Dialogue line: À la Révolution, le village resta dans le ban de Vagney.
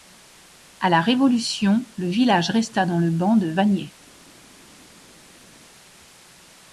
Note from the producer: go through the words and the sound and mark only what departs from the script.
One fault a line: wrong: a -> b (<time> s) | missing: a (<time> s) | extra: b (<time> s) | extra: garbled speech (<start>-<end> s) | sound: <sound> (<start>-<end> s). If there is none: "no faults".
no faults